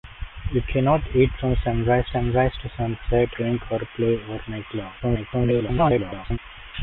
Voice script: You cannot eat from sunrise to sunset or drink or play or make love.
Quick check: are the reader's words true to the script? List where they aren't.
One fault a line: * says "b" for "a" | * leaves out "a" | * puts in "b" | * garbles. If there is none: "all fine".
* puts in "sunrise"
* leaves out "or"
* garbles